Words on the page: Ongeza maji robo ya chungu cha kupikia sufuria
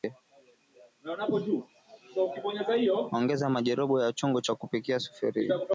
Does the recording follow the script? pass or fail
pass